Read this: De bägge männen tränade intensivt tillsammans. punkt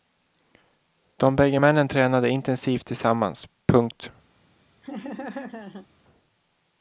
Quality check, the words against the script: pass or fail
pass